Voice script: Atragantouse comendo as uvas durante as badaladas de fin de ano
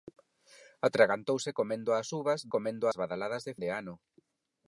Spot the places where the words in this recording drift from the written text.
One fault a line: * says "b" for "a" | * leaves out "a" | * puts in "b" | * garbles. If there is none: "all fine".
* says "comendo" for "durante"
* leaves out "fin"